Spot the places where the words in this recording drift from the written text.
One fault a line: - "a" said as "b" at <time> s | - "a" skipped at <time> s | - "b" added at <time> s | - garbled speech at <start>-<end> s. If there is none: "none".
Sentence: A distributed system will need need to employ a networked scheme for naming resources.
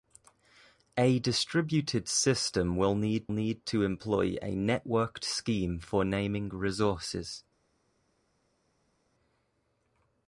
none